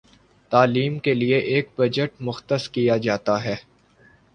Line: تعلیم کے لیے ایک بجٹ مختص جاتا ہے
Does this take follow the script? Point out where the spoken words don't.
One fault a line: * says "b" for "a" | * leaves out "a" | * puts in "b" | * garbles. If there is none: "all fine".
* puts in "کیا"